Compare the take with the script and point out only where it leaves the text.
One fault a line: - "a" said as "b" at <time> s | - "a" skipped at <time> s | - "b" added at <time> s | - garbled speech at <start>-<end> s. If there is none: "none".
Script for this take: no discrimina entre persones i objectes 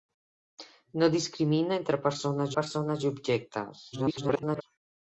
- "persones" added at 2.6 s
- garbled speech at 3.9-4.6 s